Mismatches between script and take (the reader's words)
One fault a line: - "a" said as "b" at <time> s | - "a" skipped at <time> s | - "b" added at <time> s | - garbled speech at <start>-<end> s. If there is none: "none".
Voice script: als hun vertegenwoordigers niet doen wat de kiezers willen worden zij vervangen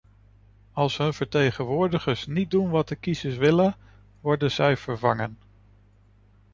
none